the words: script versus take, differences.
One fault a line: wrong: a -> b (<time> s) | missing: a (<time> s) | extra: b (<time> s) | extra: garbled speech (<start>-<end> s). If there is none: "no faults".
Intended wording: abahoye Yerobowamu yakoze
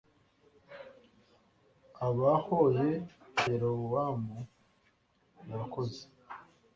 no faults